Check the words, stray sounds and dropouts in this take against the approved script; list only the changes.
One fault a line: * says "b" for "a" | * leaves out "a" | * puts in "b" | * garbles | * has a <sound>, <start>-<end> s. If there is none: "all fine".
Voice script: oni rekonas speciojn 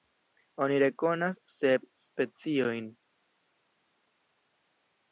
* puts in "sep"